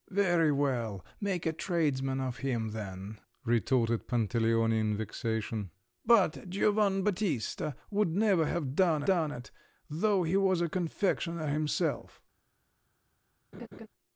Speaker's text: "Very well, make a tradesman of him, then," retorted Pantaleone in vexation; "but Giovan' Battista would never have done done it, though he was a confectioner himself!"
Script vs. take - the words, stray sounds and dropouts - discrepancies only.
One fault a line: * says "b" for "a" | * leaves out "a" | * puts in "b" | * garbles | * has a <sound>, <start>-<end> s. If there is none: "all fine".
* has a laugh, 13.5-13.9 s